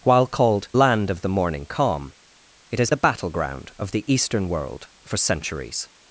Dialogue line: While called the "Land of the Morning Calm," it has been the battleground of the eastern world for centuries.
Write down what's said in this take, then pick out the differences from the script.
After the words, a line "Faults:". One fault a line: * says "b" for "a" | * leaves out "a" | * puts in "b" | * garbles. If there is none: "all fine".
While called "Land of the Morning Calm," it has the battleground of the eastern world for centuries.
Faults:
* leaves out "the"
* leaves out "been"